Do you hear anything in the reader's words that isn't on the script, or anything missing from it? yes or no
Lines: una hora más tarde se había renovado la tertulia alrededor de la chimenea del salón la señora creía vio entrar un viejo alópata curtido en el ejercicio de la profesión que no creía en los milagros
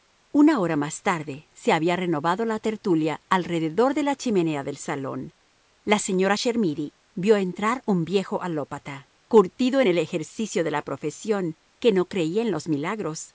yes